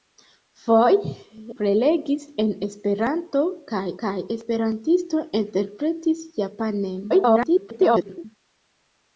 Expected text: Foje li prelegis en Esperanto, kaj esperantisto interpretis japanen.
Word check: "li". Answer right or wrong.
wrong